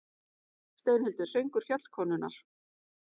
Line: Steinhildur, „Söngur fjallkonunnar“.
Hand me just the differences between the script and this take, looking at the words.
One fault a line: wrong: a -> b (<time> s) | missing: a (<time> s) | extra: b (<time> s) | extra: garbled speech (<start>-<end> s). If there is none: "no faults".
no faults